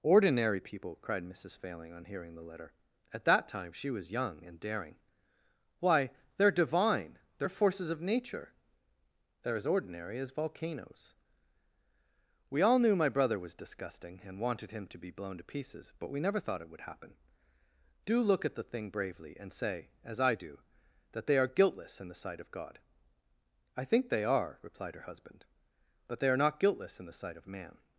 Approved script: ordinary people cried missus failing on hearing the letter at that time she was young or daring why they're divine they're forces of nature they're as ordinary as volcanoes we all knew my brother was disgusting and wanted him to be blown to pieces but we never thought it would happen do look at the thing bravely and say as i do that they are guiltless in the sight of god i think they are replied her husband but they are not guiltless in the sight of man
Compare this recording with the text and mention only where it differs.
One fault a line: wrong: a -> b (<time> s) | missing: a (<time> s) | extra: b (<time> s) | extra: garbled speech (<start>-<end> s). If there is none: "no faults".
wrong: or -> and (4.4 s)